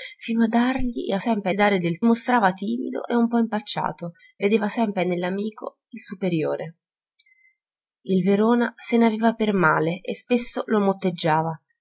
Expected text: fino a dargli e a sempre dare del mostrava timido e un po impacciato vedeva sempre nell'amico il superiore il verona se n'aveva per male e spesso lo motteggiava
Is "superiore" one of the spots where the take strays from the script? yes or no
no